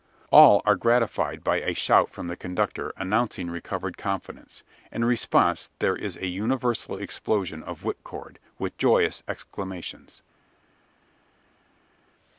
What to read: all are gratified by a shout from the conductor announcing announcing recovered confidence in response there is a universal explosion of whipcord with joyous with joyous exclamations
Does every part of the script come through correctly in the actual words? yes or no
no